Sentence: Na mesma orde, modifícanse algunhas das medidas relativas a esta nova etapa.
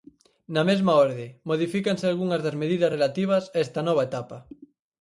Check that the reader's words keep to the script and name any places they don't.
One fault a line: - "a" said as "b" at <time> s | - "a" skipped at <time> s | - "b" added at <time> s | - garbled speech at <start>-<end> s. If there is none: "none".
none